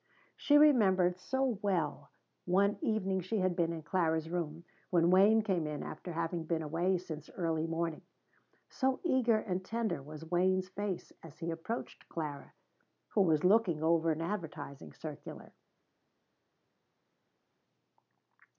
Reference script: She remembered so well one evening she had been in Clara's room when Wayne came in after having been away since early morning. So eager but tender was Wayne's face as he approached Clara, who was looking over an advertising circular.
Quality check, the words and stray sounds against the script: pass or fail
fail